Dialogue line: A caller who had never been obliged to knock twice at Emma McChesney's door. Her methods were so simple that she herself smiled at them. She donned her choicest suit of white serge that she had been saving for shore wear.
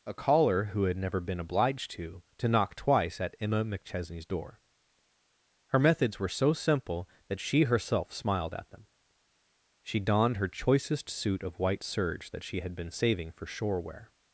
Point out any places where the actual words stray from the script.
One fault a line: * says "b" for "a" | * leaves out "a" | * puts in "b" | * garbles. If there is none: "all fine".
* puts in "to"